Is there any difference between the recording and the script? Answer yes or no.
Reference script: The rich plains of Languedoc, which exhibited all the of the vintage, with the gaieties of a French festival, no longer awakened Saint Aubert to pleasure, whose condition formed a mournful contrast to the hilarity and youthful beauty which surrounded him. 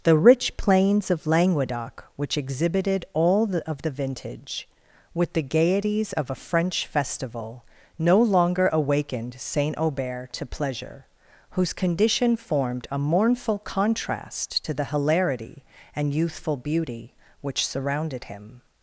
no